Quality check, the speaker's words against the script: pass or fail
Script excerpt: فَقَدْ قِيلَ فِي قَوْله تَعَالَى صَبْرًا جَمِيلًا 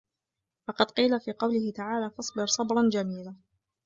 fail